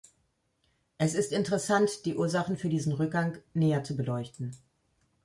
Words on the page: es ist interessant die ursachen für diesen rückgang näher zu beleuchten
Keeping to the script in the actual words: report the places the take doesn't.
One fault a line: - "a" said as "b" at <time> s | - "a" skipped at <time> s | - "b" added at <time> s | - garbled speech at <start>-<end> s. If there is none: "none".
none